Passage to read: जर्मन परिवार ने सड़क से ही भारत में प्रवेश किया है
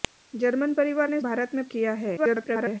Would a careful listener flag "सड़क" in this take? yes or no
yes